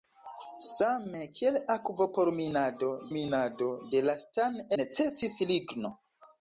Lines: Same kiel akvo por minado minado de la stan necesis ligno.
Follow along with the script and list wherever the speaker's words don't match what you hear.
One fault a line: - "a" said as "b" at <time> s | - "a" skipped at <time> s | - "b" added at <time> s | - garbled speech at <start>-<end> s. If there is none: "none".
none